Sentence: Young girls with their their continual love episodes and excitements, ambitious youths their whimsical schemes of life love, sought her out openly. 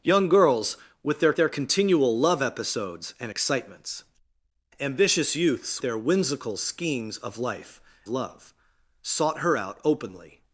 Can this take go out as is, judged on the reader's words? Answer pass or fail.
pass